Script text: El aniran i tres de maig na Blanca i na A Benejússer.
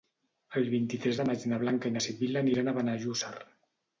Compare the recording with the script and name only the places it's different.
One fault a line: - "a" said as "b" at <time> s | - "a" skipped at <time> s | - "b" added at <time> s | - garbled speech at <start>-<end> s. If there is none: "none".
- "aniran" said as "vint" at 0.7 s
- "Sibil·la aniran" added at 2.1 s